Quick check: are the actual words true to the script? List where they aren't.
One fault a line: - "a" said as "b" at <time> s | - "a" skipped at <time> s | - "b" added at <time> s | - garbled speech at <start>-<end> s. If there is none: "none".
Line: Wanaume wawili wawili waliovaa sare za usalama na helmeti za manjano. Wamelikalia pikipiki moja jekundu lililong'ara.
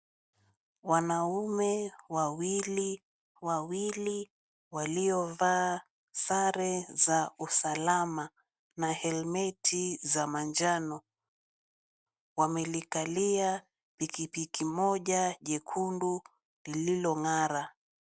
none